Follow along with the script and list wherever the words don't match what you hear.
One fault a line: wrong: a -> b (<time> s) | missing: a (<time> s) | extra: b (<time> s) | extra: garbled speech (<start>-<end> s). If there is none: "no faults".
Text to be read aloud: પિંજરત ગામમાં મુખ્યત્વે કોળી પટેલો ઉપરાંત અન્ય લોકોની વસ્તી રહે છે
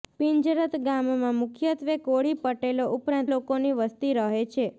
missing: અન્ય (3.3 s)